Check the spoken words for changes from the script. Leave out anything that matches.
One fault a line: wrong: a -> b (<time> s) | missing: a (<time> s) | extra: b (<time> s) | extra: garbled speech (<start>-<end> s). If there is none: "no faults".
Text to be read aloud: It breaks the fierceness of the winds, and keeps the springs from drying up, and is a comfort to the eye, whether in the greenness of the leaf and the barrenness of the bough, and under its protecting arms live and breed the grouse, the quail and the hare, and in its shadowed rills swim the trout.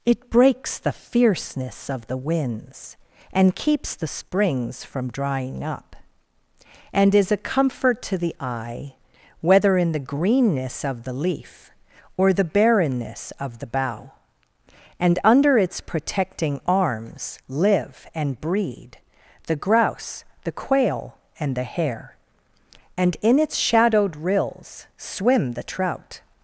wrong: and -> or (12.2 s)